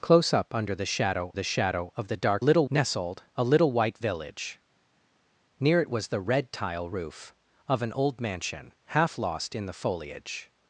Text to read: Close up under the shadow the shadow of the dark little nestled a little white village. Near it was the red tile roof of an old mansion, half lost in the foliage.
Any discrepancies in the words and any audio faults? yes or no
no